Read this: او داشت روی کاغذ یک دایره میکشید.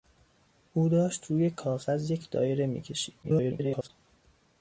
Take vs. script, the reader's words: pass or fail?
fail